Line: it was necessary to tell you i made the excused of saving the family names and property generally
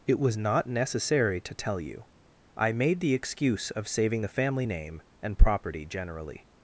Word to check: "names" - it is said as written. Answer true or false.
false